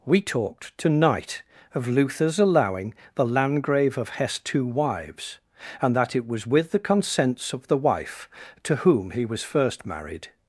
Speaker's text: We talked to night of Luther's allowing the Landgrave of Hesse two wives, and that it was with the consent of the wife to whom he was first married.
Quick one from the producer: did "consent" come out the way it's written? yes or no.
no